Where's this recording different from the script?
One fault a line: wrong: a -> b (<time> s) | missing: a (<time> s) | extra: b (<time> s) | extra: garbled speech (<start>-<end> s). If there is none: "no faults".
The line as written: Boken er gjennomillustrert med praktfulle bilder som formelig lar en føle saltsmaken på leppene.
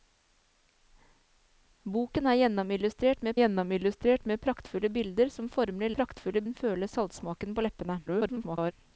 extra: gjennomillustrert med (3.4 s)
wrong: lar -> praktfulle (6.0 s)
extra: garbled speech (8.1-8.7 s)